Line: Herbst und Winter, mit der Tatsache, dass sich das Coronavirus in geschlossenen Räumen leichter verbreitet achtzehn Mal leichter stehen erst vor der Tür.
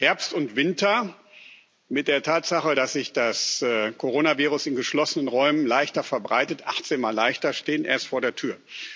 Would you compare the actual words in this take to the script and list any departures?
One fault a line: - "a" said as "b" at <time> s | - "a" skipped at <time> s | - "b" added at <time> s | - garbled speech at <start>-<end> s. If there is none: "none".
none